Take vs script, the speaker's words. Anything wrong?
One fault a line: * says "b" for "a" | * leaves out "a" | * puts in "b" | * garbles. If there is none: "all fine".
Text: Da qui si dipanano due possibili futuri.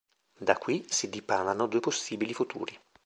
all fine